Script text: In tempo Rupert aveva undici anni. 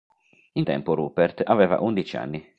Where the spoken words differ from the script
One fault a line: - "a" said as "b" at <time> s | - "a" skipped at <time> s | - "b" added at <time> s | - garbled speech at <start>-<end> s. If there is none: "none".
none